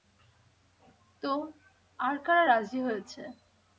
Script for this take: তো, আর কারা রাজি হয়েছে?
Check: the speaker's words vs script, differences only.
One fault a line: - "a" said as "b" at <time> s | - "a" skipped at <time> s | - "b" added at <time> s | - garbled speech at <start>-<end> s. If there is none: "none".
none